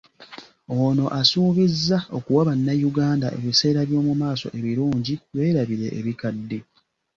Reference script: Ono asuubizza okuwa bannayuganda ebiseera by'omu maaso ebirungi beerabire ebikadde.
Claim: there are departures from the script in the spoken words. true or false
false